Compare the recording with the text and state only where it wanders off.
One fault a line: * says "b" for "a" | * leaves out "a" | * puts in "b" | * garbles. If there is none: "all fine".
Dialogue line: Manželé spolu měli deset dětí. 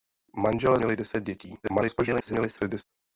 * leaves out "spolu"
* garbles